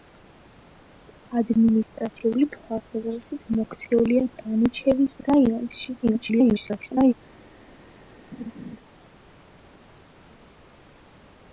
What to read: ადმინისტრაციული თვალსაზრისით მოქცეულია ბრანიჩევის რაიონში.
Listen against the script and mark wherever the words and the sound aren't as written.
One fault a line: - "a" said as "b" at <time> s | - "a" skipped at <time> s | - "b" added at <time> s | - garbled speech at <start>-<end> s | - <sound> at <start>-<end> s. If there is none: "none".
- garbled speech at 6.0-7.1 s
- laugh at 8.3-8.8 s